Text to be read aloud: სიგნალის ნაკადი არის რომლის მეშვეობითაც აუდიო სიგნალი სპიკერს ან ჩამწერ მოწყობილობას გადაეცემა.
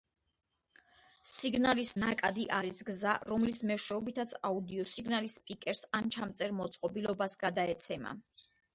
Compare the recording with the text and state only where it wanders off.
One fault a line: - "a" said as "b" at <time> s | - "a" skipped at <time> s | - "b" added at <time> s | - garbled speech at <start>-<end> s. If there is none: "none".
- "გზა" added at 2.9 s